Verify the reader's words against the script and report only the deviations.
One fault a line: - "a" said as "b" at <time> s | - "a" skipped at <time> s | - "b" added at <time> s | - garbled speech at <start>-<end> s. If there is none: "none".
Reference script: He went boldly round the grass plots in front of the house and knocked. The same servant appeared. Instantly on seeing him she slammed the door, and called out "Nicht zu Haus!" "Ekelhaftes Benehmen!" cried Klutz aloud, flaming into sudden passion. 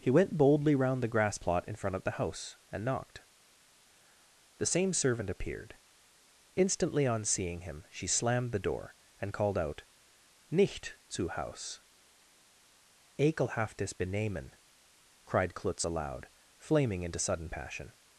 - "plots" said as "plot" at 1.3 s